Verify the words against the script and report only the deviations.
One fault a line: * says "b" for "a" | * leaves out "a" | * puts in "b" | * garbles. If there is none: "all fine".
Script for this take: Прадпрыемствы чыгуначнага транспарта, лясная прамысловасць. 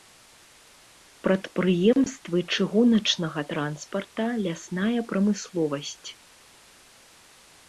all fine